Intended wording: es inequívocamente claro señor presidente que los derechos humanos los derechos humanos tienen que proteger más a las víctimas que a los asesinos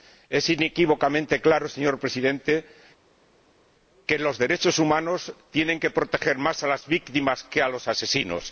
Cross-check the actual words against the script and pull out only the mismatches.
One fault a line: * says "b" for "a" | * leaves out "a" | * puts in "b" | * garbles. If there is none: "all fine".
* leaves out "los derechos humanos"